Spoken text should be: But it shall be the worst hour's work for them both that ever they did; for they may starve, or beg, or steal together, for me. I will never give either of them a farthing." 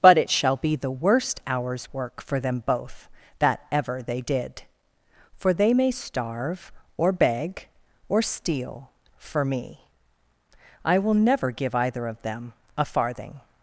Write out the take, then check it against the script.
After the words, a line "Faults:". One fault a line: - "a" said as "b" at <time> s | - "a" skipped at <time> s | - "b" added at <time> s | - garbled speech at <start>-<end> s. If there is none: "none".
But it shall be the worst hour's work for them both that ever they did; for they may starve, or beg, or steal for me. I will never give either of them a farthing."
Faults:
- "together" skipped at 8.9 s